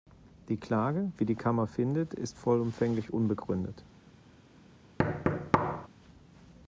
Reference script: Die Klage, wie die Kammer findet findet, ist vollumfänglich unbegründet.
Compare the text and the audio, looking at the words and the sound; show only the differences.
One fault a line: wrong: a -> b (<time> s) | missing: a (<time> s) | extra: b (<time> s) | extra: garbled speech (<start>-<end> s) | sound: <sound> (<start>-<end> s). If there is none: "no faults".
missing: findet (2.1 s)
sound: thud (5.0-5.9 s)